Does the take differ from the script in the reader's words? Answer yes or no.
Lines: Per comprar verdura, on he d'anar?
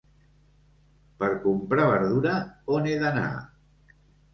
no